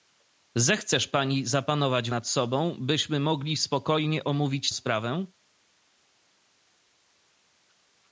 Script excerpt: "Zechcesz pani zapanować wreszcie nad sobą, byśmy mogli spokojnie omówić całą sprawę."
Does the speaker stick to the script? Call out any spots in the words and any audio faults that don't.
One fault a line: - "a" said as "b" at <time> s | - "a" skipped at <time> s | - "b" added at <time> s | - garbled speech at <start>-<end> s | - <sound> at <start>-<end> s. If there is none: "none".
- "wreszcie" skipped at 2.1 s
- "całą" skipped at 4.7 s